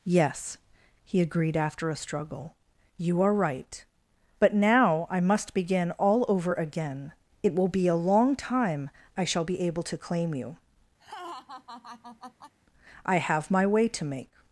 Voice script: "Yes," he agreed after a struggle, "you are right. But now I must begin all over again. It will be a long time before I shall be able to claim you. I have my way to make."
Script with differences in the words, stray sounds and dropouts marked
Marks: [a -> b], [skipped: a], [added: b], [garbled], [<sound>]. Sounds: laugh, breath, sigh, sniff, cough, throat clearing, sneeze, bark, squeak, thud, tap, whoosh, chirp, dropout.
"Yes," he agreed after a struggle, "you are right. But now I must begin all over again. It will be a long time [skipped: before] I shall be able to claim you. [laugh] I have my way to make."